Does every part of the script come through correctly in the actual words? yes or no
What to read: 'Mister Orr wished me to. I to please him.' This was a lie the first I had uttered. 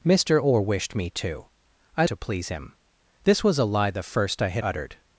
yes